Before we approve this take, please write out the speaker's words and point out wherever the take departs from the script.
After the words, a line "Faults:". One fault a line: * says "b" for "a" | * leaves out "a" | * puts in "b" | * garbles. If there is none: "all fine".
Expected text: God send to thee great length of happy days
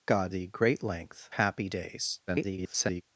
God thee great length happy days [garbled]
Faults:
* leaves out "send to"
* leaves out "of"
* garbles